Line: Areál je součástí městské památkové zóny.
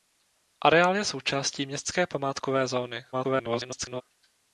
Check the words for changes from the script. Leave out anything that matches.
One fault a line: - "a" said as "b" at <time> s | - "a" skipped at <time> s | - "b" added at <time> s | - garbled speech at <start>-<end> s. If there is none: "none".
- garbled speech at 3.1-4.0 s